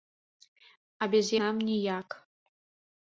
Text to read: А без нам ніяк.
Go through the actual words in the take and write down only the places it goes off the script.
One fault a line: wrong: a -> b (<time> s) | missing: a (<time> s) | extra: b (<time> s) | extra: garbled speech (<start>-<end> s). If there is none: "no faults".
no faults